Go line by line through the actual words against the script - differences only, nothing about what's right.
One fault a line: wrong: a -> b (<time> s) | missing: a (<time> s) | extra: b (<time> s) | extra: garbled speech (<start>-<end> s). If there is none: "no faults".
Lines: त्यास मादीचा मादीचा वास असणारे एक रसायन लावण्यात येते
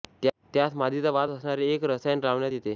missing: मादीचा (1.1 s)